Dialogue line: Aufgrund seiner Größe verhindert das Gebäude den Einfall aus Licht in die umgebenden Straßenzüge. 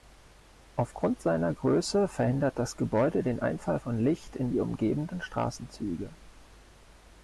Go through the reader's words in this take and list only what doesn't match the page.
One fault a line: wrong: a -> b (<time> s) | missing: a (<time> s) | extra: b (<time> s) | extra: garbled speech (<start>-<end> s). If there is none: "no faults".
wrong: aus -> von (3.8 s)